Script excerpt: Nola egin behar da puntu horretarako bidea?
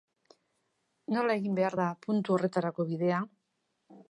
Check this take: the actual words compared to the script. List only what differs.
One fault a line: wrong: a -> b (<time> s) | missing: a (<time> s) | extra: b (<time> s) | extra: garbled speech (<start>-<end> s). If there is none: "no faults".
no faults